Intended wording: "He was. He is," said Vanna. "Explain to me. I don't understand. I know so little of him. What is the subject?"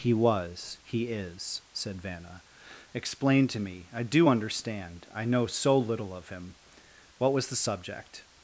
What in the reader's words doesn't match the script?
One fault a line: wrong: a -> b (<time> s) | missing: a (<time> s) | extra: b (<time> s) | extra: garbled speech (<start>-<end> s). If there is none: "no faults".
wrong: don't -> do (4.0 s)
wrong: is -> was (7.3 s)